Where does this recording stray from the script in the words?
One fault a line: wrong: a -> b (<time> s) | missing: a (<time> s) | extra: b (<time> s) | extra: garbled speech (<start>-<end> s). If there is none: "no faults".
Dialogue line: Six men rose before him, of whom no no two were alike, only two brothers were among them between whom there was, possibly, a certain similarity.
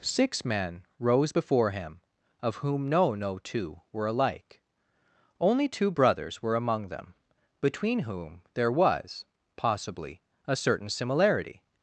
no faults